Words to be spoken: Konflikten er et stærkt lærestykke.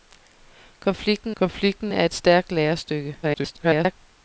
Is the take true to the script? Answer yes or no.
no